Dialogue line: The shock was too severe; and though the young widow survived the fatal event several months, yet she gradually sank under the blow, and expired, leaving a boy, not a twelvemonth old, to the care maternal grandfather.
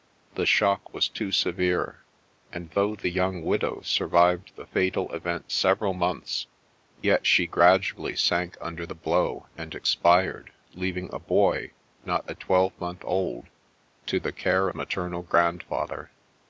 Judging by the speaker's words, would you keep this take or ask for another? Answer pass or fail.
pass